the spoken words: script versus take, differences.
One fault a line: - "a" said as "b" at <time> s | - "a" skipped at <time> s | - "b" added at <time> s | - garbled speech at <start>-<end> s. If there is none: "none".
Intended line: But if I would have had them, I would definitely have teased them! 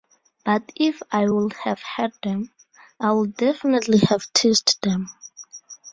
none